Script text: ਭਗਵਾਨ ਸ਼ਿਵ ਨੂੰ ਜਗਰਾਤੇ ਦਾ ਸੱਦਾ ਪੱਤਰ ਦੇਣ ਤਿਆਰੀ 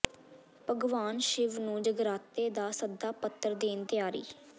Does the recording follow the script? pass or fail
pass